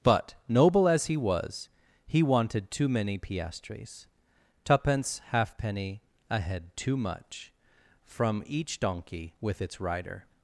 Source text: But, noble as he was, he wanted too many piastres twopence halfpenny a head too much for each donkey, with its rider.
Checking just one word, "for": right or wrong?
wrong